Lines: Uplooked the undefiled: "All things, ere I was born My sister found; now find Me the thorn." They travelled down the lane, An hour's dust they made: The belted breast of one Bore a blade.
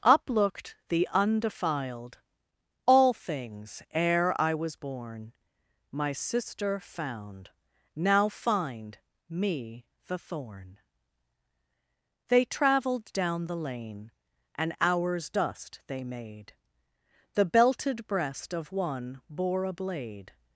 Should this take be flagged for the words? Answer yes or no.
no